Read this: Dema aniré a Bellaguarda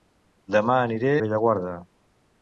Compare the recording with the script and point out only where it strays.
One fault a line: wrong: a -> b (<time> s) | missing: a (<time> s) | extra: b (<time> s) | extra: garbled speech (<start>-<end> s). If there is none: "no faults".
missing: a (1.1 s)